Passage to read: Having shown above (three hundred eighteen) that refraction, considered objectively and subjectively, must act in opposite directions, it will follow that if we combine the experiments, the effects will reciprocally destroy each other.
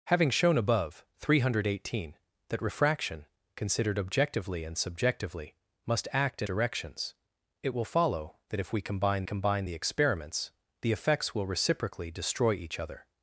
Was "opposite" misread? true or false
true